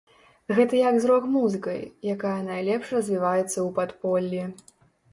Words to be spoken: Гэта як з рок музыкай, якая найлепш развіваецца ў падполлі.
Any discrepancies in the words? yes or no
no